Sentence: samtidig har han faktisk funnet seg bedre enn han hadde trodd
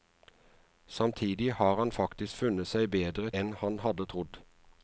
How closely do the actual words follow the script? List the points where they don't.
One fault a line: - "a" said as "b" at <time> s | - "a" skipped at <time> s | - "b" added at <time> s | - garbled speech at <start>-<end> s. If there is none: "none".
none